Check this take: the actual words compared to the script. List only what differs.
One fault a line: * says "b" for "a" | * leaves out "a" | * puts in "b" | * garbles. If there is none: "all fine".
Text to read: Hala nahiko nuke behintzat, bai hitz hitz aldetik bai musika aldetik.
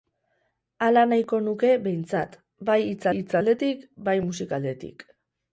all fine